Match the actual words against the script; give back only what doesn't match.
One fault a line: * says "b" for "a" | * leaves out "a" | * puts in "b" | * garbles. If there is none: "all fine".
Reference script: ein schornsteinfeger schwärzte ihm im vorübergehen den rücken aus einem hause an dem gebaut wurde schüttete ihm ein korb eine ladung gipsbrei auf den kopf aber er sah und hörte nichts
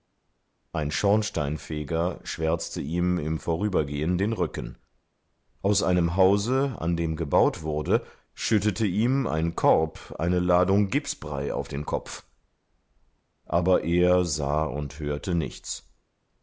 all fine